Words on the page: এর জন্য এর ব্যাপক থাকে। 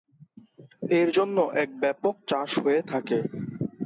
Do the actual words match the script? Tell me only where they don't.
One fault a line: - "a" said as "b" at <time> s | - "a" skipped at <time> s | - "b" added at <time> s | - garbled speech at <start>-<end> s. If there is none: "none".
- "চাষ হয়ে" added at 2.3 s